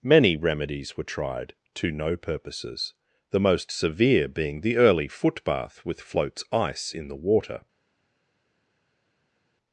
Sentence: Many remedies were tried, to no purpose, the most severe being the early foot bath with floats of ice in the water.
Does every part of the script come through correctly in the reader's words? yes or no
no